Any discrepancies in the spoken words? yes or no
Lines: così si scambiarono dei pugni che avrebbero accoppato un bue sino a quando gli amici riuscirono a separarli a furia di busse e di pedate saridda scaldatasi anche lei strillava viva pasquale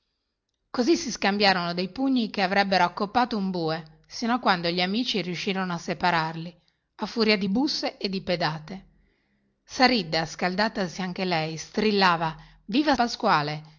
no